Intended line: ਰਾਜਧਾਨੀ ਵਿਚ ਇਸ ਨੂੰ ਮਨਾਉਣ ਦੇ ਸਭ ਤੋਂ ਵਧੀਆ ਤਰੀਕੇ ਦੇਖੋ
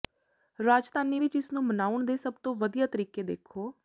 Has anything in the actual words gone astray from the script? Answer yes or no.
no